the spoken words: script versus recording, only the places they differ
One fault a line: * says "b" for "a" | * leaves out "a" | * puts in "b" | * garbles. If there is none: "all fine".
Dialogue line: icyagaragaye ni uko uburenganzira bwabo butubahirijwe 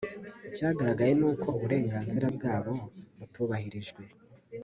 all fine